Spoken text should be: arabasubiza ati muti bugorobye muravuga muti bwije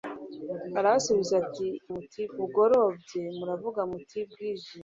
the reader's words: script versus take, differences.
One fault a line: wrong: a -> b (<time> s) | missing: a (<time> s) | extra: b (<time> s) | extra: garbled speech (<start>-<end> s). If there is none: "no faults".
no faults